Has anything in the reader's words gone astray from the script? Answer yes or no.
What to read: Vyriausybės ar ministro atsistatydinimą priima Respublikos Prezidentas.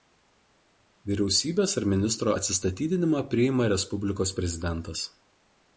no